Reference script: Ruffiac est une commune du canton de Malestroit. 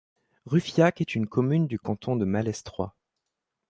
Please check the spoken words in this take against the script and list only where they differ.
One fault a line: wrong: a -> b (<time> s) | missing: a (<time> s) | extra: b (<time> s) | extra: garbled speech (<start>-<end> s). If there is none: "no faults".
no faults